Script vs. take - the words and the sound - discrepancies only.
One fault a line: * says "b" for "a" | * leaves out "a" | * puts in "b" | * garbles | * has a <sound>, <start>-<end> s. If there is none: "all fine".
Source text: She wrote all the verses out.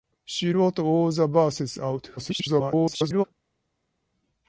* garbles